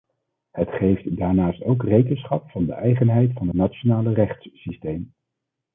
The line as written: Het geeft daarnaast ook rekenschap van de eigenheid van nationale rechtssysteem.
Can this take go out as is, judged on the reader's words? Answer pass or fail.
pass